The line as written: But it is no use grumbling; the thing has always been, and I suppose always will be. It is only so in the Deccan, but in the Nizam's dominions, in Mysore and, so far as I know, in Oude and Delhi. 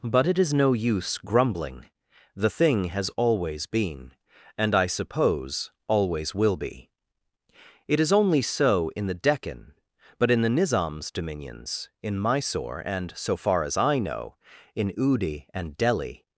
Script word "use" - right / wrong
right